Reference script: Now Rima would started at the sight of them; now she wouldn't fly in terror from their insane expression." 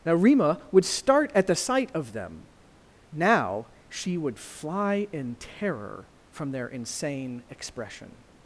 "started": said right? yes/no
no